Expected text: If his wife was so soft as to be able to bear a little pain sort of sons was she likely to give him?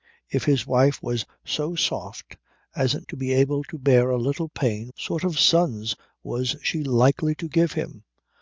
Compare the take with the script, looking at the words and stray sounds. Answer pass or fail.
pass